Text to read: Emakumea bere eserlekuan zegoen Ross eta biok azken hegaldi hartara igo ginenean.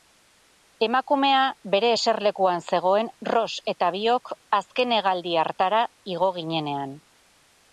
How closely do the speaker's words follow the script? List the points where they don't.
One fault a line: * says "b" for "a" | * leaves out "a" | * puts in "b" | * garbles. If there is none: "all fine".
all fine